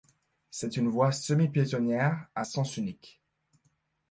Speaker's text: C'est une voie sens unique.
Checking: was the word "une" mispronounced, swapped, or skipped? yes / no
no